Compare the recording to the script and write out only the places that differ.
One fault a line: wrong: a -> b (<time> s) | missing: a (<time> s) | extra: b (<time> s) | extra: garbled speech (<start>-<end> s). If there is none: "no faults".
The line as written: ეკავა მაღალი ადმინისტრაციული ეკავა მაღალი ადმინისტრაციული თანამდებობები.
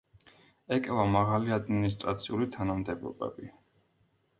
missing: ეკავა მაღალი ადმინისტრაციული (2.5 s)